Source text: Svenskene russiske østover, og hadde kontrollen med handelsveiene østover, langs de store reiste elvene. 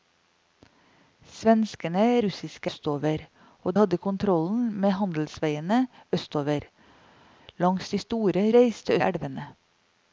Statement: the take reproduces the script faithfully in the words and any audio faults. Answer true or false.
true